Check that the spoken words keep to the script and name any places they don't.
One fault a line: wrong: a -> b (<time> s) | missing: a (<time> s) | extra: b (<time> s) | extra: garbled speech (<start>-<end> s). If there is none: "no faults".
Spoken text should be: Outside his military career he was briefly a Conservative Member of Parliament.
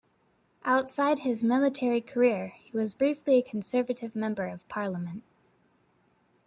no faults